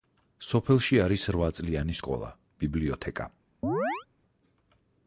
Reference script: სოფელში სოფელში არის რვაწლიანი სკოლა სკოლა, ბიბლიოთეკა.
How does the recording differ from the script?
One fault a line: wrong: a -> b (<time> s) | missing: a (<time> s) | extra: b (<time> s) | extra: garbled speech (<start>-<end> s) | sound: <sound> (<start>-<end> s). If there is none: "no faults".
missing: სოფელში (1.0 s)
missing: სკოლა (2.3 s)
sound: chirp (3.6-4.1 s)